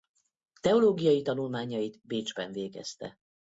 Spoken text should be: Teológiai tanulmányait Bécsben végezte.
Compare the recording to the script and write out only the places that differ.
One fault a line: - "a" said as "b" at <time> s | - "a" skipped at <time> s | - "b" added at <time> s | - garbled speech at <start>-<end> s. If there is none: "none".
none